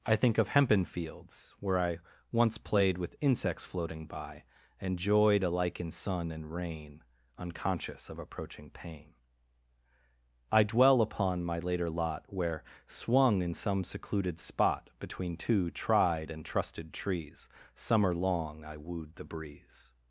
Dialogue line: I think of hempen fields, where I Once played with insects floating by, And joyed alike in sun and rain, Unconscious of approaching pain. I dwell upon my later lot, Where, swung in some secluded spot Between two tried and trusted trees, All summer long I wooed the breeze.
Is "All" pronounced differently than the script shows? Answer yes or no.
yes